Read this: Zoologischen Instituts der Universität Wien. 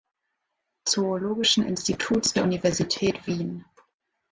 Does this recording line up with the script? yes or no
yes